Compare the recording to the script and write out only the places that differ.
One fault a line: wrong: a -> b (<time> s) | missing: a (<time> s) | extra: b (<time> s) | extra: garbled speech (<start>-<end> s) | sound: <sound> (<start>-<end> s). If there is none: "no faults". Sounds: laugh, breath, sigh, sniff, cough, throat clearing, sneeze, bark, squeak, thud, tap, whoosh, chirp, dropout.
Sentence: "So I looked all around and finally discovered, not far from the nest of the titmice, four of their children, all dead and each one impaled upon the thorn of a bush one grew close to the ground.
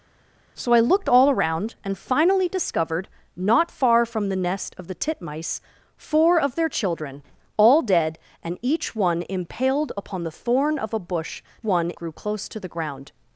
no faults